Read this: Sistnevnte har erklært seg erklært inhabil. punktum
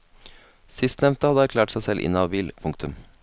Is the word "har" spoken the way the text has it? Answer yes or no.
no